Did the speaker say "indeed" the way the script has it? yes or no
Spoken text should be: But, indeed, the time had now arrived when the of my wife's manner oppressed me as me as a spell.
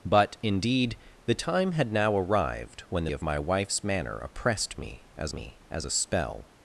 yes